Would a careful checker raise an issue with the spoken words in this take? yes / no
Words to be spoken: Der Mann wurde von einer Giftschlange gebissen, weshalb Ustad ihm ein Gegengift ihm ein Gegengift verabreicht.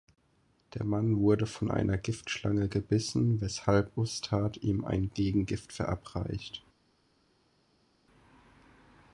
yes